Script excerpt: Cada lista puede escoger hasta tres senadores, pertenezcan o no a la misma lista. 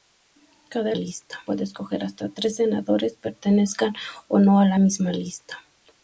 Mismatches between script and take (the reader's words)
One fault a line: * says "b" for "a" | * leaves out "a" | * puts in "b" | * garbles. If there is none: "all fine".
all fine